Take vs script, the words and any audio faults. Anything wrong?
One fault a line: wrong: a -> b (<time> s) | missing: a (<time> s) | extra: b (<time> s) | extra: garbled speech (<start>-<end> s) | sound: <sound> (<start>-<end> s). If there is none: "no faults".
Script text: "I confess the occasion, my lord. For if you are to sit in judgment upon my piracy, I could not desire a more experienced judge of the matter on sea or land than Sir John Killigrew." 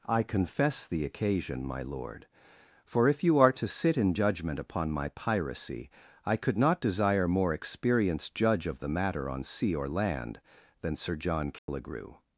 missing: a (7.3 s)
sound: dropout (11.6-11.7 s)